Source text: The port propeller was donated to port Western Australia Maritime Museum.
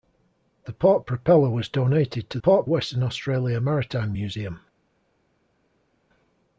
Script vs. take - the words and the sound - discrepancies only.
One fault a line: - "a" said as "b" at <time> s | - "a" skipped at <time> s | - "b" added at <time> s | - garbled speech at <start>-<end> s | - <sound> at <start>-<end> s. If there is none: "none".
none